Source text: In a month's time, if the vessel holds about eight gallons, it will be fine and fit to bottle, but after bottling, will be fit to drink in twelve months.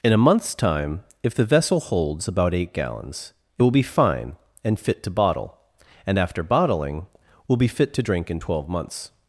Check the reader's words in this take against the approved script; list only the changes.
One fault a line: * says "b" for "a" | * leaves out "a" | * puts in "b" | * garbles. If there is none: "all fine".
* says "and" for "but"